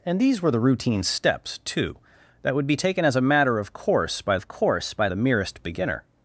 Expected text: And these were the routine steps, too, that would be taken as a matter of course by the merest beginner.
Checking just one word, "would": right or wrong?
right